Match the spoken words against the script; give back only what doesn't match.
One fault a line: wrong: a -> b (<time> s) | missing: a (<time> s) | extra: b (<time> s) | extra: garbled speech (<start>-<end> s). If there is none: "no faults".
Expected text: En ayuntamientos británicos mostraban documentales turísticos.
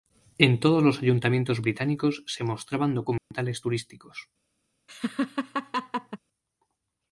extra: todos los (0.6 s)
extra: se (2.2 s)